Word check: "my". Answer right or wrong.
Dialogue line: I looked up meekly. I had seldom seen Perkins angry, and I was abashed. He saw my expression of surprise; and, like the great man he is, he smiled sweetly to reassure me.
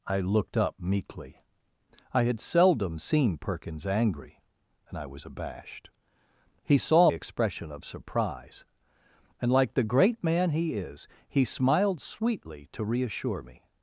wrong